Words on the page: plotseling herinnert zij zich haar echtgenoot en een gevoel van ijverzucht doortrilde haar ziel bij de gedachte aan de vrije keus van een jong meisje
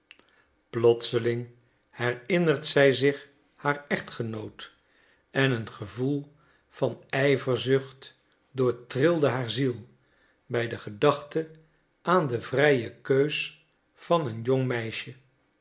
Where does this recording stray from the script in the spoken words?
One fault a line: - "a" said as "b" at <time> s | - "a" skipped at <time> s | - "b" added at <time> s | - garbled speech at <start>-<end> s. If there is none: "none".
none